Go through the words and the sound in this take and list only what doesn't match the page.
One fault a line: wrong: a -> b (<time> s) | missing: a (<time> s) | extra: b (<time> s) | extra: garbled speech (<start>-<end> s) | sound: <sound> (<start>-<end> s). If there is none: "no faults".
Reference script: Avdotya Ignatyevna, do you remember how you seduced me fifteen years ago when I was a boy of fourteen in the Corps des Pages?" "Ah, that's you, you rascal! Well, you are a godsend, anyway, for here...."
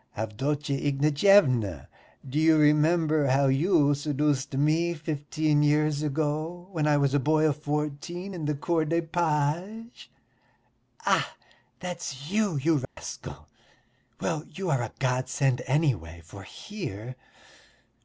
sound: dropout (12.8-13.0 s)